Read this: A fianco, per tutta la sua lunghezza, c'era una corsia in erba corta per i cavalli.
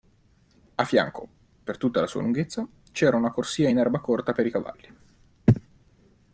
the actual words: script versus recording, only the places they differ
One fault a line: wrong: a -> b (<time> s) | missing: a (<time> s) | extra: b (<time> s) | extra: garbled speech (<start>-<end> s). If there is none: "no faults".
no faults